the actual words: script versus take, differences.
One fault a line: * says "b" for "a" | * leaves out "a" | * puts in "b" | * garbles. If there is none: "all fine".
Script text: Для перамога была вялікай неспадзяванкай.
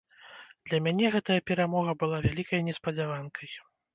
* puts in "мяне гэтая"